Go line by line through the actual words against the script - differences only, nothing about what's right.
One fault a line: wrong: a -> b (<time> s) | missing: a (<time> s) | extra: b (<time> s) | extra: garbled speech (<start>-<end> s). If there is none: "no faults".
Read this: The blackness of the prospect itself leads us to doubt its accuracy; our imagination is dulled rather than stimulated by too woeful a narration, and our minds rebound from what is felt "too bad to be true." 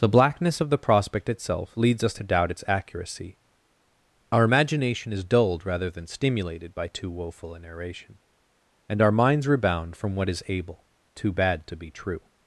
wrong: felt -> able (10.5 s)